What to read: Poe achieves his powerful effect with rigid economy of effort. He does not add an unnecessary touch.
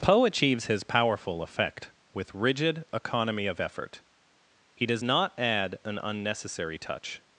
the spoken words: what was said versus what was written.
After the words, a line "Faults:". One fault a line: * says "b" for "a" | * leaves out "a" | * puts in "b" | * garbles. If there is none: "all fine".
Poe achieves his powerful effect with rigid economy of effort. He does not add an unnecessary touch.
Faults:
all fine